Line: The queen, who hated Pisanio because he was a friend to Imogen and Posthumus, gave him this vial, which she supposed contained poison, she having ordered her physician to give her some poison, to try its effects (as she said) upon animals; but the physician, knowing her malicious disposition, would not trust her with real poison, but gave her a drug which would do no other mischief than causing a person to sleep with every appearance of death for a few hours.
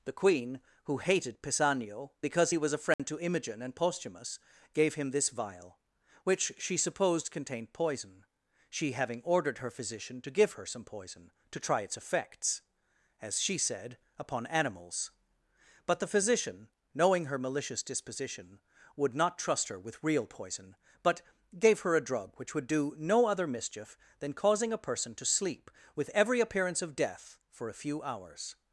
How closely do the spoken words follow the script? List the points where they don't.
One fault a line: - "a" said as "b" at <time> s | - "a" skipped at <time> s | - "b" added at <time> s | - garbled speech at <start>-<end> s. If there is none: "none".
none